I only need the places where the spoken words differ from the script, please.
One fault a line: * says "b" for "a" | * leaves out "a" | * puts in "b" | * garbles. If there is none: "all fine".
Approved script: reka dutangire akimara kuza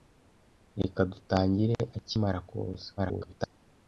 * garbles